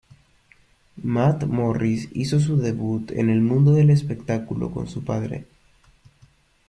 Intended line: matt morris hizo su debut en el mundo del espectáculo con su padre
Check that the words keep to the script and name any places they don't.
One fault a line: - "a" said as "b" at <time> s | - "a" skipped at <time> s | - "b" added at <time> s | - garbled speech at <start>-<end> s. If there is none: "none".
none